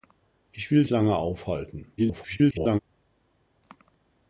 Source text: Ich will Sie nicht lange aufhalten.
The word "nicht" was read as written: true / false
false